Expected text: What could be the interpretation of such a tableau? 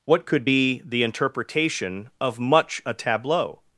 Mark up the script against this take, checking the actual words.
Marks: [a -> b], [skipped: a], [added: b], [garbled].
What could be the interpretation of [such -> much] a tableau?